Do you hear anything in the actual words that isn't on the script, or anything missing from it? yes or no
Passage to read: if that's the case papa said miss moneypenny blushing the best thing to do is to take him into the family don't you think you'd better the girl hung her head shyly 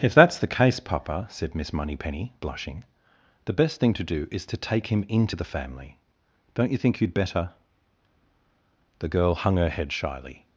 no